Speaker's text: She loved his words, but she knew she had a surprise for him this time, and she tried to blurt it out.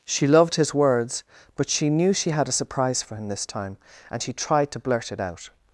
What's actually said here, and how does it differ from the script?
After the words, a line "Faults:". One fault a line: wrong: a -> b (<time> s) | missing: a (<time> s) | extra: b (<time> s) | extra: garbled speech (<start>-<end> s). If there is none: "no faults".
She loved his words, but she knew she had a surprise for him this time, and she tried to blurt it out.
Faults:
no faults